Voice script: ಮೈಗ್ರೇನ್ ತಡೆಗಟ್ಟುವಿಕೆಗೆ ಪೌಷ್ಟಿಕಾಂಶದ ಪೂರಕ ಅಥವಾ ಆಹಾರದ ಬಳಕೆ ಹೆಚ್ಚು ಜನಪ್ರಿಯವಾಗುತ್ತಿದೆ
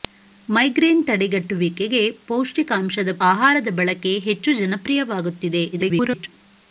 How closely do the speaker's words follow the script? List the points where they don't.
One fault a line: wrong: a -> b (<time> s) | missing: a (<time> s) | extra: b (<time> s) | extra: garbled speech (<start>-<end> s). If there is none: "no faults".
missing: ಪೂರಕ ಅಥವಾ (3.1 s)
extra: garbled speech (5.7-6.3 s)